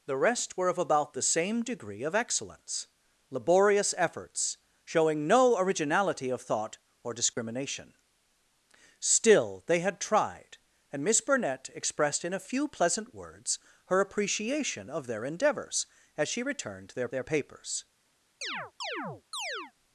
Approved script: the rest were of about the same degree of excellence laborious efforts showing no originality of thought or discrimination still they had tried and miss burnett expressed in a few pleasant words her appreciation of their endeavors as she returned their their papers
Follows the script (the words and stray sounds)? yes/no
no